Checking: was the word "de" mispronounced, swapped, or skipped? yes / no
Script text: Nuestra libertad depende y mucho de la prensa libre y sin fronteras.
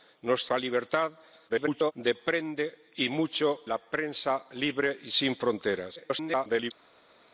yes